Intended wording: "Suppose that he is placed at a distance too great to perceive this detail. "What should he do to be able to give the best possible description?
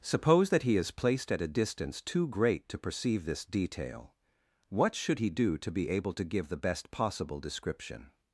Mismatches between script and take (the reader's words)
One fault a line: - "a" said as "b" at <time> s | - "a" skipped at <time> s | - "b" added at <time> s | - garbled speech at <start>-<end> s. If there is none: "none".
none